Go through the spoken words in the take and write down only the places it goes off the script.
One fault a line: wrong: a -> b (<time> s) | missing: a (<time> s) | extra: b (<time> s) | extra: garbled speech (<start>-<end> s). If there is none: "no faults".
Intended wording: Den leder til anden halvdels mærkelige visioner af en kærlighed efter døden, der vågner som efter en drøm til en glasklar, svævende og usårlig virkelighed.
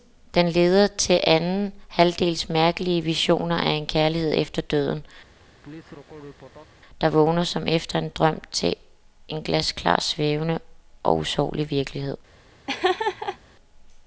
no faults